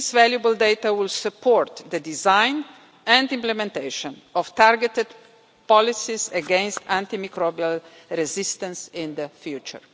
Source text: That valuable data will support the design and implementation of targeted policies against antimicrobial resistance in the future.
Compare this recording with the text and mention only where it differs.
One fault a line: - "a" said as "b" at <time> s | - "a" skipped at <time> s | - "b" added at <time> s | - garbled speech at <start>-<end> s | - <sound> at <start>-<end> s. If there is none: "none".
- "That" said as "This" at 0.0 s